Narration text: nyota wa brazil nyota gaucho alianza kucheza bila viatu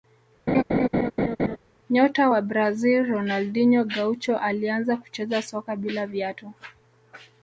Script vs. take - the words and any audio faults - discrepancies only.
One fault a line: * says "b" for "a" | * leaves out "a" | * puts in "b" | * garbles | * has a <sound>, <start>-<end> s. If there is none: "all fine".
* has a laugh, 0.5-1.6 s
* says "ronaldinho" for "nyota"
* puts in "soka"